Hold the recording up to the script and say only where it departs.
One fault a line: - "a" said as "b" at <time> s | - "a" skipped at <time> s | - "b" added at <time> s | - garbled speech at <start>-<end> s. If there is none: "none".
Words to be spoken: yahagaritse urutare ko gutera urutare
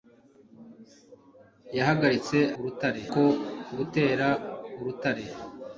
none